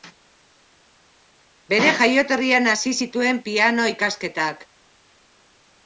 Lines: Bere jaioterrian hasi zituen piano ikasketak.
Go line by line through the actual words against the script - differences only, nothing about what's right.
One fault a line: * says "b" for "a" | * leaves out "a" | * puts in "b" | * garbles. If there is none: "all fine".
all fine